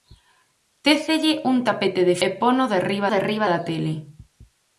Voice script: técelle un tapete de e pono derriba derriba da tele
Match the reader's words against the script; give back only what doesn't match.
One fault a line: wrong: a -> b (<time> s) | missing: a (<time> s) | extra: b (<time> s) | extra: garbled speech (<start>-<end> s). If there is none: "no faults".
no faults